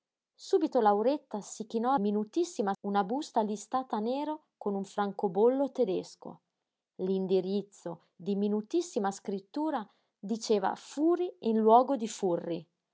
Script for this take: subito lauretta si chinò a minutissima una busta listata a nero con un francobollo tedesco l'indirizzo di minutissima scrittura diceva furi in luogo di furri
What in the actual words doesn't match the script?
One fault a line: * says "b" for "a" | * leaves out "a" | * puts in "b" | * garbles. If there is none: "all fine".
all fine